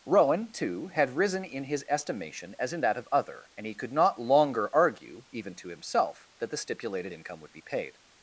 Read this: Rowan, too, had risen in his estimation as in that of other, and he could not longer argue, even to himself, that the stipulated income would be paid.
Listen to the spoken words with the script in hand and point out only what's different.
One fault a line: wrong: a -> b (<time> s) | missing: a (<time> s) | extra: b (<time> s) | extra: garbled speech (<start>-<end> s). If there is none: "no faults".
no faults